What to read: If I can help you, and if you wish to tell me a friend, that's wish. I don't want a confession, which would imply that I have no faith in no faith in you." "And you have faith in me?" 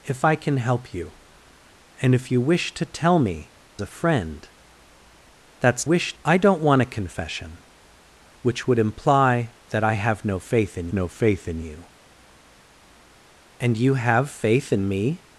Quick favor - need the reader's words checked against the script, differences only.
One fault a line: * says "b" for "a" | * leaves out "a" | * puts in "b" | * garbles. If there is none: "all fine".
all fine